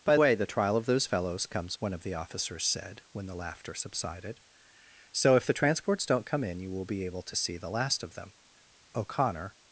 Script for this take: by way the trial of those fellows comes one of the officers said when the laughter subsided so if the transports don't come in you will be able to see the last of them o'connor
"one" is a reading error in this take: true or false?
false